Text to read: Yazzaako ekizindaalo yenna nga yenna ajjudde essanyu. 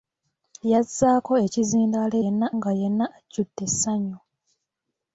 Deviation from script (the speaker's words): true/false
false